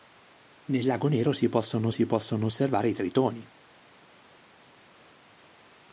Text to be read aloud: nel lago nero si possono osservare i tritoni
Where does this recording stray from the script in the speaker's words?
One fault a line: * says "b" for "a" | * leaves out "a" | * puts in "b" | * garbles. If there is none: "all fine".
* puts in "si possono"